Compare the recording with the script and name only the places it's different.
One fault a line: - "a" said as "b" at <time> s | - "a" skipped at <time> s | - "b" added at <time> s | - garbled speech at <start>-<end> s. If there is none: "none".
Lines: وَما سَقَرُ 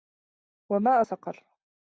none